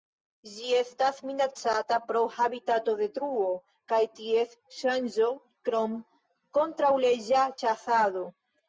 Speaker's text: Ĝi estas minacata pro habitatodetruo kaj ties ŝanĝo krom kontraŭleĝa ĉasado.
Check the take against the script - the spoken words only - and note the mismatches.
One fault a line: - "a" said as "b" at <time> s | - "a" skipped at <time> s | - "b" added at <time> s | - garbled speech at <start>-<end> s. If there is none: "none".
none